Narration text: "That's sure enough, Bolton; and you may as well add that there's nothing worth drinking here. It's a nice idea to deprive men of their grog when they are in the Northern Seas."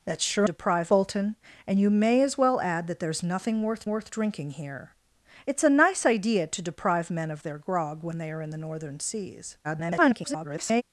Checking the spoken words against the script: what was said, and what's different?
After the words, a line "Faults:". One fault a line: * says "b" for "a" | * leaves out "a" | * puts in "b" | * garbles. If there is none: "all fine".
"That's sure deprive, Bolton; and you may as well add that there's nothing worth worth drinking here. It's a nice idea to deprive men of their grog when they are in the Northern Seas." [garbled]
Faults:
* says "deprive" for "enough"
* puts in "worth"
* garbles